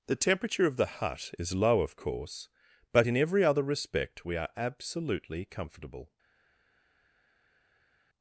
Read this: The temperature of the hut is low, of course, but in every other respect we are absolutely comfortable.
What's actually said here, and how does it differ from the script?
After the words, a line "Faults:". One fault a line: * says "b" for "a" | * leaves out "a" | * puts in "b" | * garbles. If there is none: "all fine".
The temperature of the hut is low, of course, but in every other respect we are absolutely comfortable.
Faults:
all fine